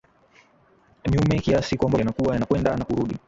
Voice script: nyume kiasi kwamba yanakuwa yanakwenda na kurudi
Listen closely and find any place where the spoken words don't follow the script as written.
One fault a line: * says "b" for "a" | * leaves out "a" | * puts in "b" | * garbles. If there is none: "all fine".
all fine